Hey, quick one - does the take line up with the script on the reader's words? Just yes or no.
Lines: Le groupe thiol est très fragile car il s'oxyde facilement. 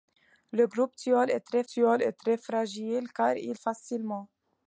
no